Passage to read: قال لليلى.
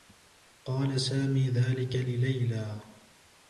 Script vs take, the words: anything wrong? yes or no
yes